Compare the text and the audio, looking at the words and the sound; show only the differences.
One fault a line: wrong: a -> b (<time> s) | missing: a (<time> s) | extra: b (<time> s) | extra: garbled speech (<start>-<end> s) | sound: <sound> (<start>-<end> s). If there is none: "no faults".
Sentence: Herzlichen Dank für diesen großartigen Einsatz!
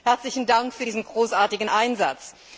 no faults